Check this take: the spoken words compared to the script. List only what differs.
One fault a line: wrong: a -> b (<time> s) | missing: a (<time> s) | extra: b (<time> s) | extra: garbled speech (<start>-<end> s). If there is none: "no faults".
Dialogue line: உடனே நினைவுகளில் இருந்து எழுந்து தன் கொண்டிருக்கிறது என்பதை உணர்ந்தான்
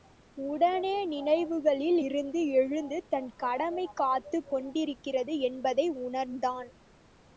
extra: கடமை காத்துக் (3.3 s)